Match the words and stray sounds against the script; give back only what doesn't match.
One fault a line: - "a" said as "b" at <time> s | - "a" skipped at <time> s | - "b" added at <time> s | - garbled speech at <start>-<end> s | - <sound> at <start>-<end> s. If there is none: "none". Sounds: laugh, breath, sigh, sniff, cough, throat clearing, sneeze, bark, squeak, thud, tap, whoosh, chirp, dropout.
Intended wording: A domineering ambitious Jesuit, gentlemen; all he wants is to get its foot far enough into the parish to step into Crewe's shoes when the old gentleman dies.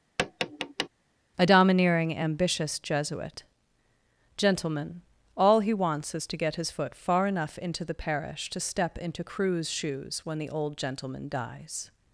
- tap at 0.2-0.9 s
- "its" said as "his" at 6.5 s